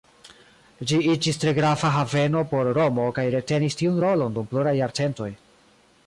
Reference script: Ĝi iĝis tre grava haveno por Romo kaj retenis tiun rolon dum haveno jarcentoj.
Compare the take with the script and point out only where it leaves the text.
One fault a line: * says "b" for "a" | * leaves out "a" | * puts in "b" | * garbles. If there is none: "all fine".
* says "pluraj" for "haveno"